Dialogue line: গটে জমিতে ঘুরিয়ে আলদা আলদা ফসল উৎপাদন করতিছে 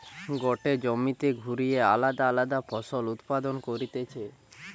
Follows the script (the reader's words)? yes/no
yes